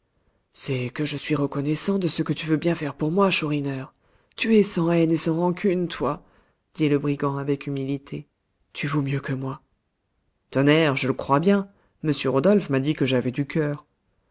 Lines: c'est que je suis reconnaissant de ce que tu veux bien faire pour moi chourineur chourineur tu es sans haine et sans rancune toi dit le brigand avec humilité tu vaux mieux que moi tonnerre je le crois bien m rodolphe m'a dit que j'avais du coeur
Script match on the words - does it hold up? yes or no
no